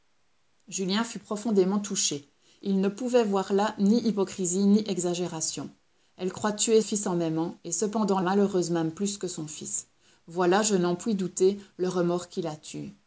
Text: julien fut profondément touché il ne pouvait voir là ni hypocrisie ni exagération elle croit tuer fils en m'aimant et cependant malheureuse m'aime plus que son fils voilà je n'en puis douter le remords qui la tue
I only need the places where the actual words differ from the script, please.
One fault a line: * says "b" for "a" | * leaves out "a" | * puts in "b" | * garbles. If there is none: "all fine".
all fine